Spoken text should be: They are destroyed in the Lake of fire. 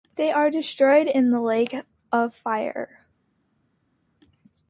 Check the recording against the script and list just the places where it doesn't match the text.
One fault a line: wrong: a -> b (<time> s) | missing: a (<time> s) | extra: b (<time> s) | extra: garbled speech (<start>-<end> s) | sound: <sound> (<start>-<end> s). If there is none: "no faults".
no faults